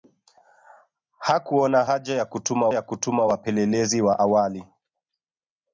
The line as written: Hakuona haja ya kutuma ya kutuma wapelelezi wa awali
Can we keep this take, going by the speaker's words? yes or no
yes